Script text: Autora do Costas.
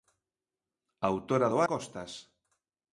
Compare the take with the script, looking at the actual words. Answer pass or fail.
pass